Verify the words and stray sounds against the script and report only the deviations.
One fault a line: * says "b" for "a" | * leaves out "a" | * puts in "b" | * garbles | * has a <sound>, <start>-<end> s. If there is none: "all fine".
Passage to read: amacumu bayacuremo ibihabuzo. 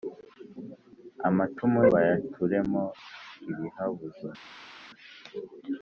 all fine